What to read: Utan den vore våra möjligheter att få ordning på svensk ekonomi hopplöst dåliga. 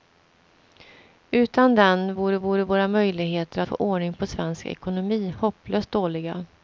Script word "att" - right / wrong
wrong